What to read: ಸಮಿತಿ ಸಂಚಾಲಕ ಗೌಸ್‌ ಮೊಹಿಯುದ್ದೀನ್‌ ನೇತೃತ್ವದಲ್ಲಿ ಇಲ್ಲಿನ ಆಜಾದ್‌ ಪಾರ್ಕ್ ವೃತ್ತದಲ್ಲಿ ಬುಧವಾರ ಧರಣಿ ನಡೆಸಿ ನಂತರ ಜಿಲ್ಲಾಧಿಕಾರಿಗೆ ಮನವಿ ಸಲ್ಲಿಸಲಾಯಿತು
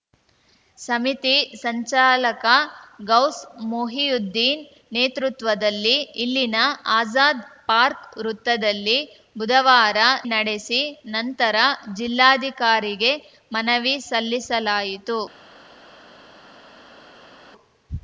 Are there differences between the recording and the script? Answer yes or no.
yes